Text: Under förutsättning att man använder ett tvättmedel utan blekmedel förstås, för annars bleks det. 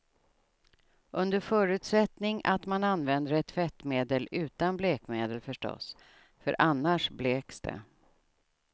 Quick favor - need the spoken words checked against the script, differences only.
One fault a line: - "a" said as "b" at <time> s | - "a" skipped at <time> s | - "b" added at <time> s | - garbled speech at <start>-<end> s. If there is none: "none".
none